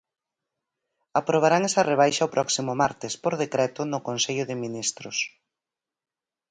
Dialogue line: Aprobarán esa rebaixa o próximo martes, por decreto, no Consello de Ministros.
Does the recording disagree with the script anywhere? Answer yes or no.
no